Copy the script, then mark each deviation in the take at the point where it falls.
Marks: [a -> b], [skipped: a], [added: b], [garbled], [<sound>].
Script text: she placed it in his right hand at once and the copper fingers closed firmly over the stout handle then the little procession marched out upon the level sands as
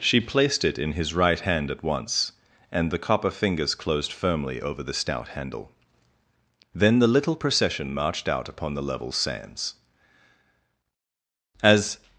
she placed it in his right hand at once and the copper fingers closed firmly over the stout handle then the little procession marched out upon the level sands as